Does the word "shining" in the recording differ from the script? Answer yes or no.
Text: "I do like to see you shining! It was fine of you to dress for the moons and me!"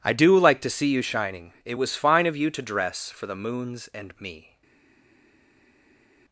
no